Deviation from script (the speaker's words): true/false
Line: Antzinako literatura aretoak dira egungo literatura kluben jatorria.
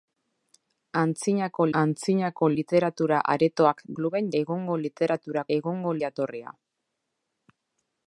true